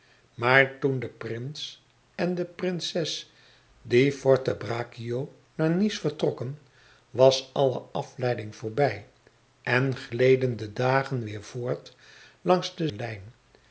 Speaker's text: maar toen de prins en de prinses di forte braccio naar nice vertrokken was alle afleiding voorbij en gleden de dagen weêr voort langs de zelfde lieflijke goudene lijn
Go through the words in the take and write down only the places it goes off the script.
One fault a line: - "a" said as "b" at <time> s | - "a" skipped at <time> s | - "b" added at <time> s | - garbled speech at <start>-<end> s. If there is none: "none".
- "zelfde lieflijke goudene" skipped at 12.9 s